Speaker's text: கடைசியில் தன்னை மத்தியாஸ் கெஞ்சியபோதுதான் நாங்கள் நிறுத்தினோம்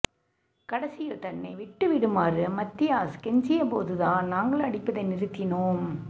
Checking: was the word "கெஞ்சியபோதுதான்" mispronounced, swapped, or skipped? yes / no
no